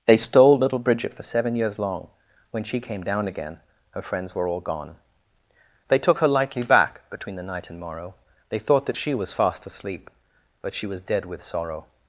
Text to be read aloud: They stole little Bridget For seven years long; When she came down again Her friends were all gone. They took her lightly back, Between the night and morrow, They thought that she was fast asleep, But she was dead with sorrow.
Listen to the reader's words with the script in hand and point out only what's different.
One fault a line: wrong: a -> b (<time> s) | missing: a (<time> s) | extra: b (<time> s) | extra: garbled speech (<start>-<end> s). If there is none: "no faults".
no faults